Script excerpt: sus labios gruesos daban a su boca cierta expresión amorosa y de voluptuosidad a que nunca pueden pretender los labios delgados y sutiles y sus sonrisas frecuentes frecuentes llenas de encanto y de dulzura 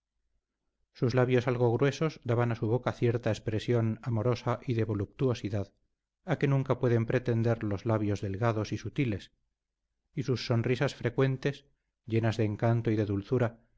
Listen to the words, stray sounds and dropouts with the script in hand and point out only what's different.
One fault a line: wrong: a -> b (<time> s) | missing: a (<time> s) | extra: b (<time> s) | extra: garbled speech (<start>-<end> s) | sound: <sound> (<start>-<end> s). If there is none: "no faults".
extra: algo (1.5 s)
missing: frecuentes (11.7 s)